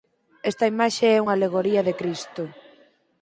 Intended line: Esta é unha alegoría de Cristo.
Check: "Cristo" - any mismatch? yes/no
no